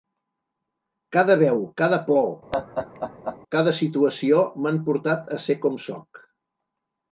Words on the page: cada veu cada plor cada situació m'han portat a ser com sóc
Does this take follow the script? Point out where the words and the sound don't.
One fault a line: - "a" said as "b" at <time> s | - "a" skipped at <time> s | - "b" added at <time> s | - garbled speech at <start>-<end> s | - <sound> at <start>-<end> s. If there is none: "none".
- laugh at 2.5-3.4 s